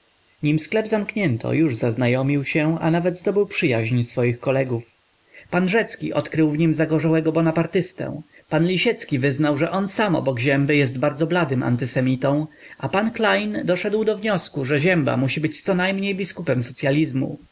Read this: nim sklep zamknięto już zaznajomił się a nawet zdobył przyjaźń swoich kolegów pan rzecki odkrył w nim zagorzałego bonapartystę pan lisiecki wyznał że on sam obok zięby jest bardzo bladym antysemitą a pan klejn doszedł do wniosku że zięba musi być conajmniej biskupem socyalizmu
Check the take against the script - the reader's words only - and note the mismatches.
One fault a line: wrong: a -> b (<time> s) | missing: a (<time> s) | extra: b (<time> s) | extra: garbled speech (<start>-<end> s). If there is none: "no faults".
no faults